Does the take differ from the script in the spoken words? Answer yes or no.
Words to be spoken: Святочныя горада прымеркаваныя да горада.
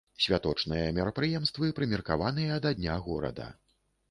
yes